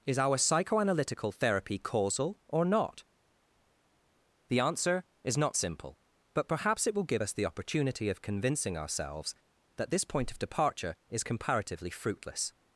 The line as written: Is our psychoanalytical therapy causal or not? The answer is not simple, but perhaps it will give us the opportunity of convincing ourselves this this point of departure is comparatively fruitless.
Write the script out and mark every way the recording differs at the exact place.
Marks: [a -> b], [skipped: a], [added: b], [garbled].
Is our psychoanalytical therapy causal or not? The answer is not simple, but perhaps it will give us the opportunity of convincing ourselves [this -> that] this point of departure is comparatively fruitless.